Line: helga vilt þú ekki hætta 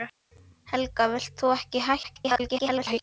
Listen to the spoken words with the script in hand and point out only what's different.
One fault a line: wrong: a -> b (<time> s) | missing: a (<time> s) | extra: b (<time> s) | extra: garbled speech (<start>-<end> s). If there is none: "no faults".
extra: garbled speech (2.0-3.0 s)